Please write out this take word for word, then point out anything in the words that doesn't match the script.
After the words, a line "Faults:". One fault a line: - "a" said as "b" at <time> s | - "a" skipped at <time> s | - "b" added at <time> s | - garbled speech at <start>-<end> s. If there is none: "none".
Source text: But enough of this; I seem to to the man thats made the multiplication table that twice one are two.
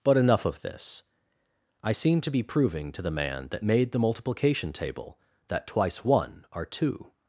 But enough of this; I seem to be proving to the man that made the multiplication table that twice one are two.
Faults:
- "be proving" added at 2.3 s
- "thats" said as "that" at 3.5 s